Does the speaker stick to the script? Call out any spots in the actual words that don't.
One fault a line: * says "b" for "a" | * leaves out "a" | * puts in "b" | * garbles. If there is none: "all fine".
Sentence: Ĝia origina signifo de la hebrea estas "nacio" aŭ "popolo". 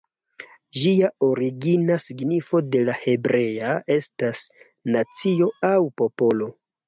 all fine